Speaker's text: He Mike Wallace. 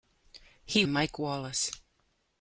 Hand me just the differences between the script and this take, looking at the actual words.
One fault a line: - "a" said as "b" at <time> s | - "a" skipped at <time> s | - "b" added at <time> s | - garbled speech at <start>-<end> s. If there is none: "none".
none